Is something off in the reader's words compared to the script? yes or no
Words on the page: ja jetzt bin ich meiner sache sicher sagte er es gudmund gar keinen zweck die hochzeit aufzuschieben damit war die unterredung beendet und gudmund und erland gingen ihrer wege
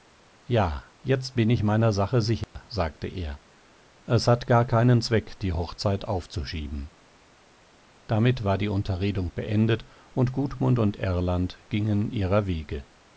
yes